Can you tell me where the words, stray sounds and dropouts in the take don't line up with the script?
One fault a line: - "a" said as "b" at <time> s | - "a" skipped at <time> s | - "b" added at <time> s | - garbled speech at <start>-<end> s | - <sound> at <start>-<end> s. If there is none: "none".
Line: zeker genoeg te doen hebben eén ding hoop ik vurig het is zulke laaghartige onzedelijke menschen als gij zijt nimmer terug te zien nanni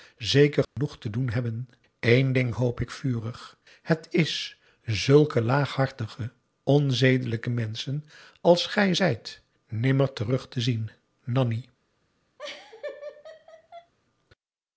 - dropout at 0.6-0.8 s
- laugh at 12.4-13.9 s